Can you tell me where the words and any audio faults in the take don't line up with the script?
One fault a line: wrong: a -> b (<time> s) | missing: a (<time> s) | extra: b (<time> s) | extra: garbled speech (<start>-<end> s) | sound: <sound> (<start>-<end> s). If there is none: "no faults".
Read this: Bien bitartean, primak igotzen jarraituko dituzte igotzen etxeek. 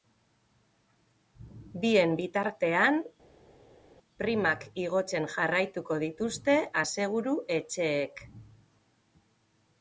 wrong: igotzen -> aseguru (6.9 s)